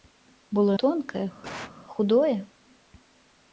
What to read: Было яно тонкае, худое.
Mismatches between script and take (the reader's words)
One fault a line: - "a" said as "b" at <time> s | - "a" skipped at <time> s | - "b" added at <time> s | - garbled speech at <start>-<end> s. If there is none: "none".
- "яно" skipped at 0.8 s